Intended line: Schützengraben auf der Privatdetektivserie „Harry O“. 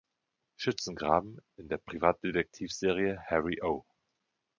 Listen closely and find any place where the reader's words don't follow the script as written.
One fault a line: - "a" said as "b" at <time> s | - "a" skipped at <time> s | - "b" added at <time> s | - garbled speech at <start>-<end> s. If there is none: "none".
- "auf" said as "in" at 1.6 s